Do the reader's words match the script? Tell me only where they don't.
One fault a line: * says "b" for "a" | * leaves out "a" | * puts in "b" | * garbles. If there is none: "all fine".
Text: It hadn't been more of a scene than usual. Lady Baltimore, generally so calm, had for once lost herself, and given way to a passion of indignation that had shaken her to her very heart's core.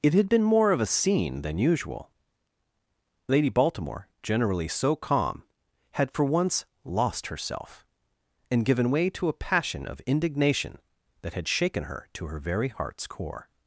* says "had" for "hadn't"